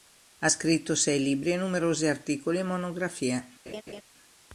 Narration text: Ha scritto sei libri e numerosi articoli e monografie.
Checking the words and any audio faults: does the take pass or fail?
fail